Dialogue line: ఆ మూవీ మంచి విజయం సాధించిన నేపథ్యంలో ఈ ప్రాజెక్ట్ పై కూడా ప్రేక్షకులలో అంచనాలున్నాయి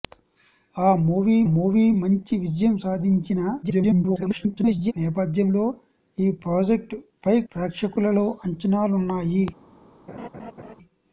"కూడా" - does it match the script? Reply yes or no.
no